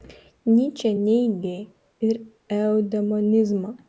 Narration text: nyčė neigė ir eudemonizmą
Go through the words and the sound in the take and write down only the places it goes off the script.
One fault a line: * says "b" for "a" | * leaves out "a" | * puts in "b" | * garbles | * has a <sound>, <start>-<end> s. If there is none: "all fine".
all fine